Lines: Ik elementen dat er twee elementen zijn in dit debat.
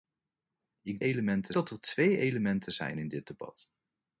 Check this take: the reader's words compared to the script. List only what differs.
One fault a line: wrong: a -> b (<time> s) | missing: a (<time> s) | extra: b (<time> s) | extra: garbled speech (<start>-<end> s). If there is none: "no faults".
no faults